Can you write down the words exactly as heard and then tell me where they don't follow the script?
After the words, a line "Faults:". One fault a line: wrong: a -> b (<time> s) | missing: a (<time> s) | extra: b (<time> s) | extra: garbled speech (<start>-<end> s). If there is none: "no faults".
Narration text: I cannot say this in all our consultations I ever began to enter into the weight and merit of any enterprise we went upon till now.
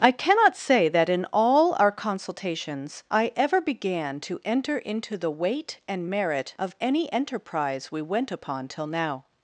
I cannot say that in all our consultations I ever began to enter into the weight and merit of any enterprise we went upon till now.
Faults:
wrong: this -> that (0.9 s)